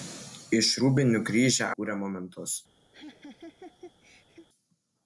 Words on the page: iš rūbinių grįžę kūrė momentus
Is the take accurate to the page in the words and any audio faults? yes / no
no